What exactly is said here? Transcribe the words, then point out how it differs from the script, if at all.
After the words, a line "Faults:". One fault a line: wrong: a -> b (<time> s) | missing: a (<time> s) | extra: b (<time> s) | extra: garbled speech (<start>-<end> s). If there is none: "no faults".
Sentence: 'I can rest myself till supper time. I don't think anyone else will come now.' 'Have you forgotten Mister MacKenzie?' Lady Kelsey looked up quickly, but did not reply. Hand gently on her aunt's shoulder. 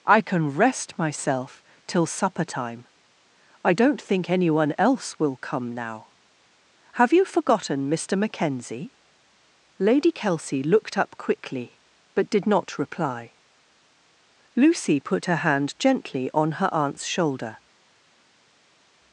'I can rest myself till supper time. I don't think anyone else will come now.' 'Have you forgotten Mister MacKenzie?' Lady Kelsey looked up quickly, but did not reply. Lucy put her hand gently on her aunt's shoulder.
Faults:
extra: Lucy put her (14.6 s)